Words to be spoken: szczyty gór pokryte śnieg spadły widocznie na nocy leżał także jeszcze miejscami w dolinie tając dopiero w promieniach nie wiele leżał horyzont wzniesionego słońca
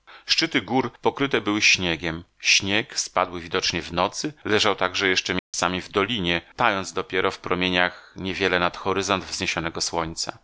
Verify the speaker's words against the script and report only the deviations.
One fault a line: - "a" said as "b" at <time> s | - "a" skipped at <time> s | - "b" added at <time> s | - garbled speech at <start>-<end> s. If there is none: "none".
- "były śniegiem" added at 1.4 s
- "na" said as "w" at 3.8 s
- "leżał" said as "nad" at 8.6 s